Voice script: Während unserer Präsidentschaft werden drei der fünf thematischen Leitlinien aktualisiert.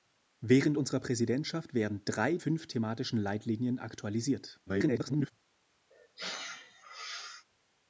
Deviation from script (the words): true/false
true